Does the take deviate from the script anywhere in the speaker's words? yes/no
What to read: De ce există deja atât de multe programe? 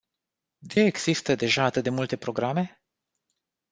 yes